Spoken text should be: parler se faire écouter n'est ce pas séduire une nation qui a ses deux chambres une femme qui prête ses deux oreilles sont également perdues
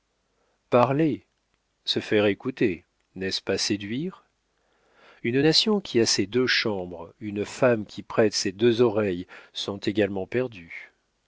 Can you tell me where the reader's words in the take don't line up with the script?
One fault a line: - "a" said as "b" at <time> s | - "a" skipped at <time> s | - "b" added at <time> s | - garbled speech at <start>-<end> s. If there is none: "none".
none